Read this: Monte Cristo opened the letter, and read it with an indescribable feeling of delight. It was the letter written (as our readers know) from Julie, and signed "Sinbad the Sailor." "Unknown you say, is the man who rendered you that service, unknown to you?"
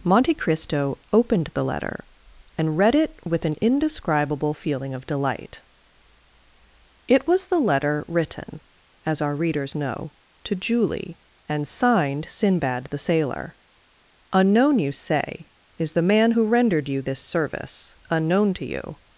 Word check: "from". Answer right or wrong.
wrong